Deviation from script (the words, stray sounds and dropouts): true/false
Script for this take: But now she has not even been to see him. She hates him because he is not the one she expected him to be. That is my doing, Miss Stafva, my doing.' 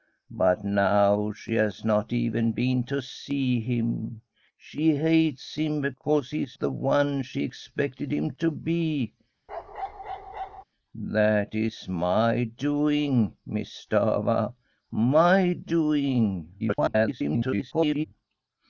true